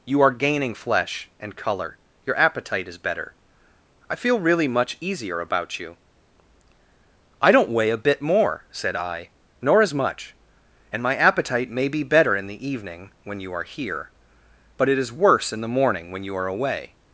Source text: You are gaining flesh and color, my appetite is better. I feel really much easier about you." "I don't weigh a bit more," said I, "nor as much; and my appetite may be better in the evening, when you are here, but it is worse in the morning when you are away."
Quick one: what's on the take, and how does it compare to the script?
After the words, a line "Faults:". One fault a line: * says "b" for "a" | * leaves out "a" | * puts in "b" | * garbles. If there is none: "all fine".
You are gaining flesh and color, your appetite is better. I feel really much easier about you." "I don't weigh a bit more," said I, "nor as much; and my appetite may be better in the evening, when you are here, but it is worse in the morning when you are away."
Faults:
* says "your" for "my"